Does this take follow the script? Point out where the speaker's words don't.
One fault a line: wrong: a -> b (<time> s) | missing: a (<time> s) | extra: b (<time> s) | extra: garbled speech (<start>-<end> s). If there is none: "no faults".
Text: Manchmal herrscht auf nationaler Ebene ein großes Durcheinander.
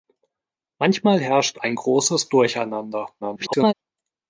missing: auf nationaler Ebene (1.6 s)
extra: garbled speech (3.2-3.7 s)